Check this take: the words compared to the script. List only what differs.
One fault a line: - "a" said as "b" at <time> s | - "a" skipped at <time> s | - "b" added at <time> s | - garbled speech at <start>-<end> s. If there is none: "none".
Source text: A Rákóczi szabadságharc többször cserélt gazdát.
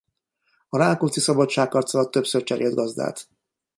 - "alatt" added at 1.9 s